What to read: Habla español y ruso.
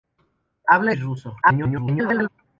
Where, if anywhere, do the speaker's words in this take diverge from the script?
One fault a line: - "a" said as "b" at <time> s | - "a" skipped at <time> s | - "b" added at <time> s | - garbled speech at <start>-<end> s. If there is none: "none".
- "español" skipped at 0.9 s
- garbled speech at 1.4-2.3 s